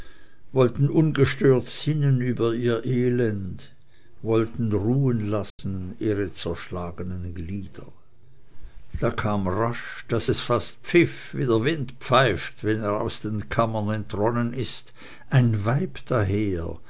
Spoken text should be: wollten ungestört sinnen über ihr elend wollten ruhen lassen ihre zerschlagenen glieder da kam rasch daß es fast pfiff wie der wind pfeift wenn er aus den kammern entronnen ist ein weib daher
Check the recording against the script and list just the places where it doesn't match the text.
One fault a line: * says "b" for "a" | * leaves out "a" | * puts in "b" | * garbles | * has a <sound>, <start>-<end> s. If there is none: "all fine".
* has a dropout, 5.5-5.6 s